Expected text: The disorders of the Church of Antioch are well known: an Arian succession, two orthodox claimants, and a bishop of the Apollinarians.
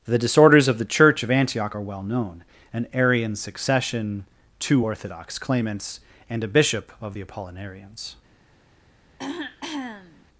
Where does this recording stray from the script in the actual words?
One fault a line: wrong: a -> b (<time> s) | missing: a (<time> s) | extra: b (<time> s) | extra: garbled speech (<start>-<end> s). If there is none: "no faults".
no faults